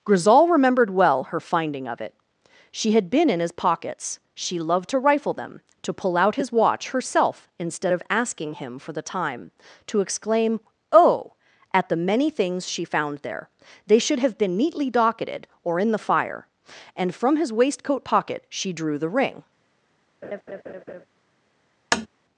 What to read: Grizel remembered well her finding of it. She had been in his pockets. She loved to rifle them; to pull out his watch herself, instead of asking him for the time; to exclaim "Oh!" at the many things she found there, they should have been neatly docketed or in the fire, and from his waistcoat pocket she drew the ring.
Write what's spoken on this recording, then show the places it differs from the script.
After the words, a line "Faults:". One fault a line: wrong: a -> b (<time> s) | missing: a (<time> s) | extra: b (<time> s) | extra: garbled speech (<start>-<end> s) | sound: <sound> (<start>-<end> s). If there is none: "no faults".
Grizel remembered well her finding of it. She had been in his pockets. She loved to rifle them; to pull out his watch herself, instead of asking him for the time; to exclaim "Oh!" at the many things she found there, they should have been neatly docketed or in the fire, and from his waistcoat pocket she drew the ring.
Faults:
sound: laugh (20.2-21.0 s)
sound: tap (21.9-22.1 s)